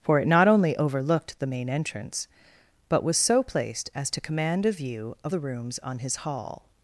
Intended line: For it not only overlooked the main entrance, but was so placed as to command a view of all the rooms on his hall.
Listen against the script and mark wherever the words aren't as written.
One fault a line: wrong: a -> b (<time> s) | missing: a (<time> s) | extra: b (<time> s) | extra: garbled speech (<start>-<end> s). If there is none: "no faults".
missing: all (5.3 s)